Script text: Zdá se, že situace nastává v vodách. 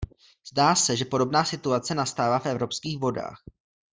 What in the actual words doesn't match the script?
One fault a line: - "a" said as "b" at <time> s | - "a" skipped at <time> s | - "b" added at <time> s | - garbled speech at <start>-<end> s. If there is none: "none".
- "podobná" added at 1.1 s
- "evropských" added at 2.5 s